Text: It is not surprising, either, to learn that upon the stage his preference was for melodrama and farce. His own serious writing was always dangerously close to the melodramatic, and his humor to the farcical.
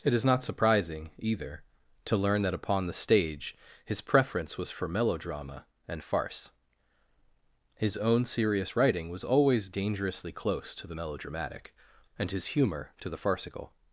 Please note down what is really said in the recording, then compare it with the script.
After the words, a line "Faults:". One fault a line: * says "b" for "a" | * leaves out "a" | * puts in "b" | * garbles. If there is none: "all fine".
It is not surprising, either, to learn that upon the stage his preference was for melodrama and farce. His own serious writing was always dangerously close to the melodramatic, and his humor to the farcical.
Faults:
all fine